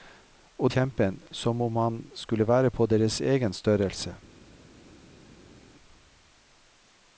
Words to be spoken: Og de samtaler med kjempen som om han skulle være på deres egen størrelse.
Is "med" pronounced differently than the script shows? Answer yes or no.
yes